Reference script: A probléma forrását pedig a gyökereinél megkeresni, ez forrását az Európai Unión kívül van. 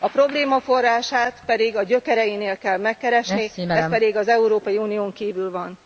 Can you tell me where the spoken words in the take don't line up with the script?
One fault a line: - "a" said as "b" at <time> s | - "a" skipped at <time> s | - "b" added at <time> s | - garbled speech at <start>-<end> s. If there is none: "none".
- "kell" added at 2.6 s
- "forrását" said as "pedig" at 3.9 s